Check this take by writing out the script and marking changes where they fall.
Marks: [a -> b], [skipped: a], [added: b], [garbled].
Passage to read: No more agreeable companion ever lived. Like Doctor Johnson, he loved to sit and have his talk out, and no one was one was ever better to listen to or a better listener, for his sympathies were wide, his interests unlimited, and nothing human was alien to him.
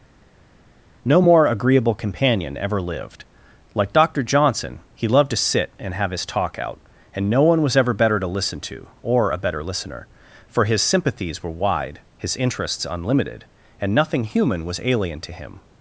No more agreeable companion ever lived. Like Doctor Johnson, he loved to sit and have his talk out, and no one was [skipped: one was] ever better to listen to or a better listener, for his sympathies were wide, his interests unlimited, and nothing human was alien to him.